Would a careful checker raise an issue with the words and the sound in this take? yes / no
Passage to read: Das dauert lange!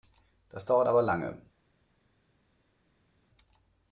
yes